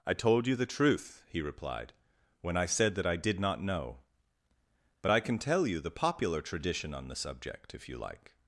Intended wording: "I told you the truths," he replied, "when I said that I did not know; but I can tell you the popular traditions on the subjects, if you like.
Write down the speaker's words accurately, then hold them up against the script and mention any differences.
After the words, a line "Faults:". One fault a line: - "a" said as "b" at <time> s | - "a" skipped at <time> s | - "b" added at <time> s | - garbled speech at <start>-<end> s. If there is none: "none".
"I told you the truth," he replied, "when I said that I did not know; but I can tell you the popular tradition on the subject, if you like.
Faults:
- "truths" said as "truth" at 0.7 s
- "traditions" said as "tradition" at 6.4 s
- "subjects" said as "subject" at 7.1 s